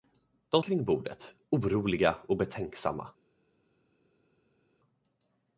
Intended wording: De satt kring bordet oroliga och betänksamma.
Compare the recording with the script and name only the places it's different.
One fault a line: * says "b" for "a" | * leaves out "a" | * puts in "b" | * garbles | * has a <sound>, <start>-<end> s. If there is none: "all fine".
* leaves out "satt"